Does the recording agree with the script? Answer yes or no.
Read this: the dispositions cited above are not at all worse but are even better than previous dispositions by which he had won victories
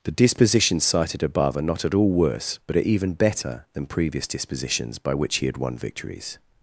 yes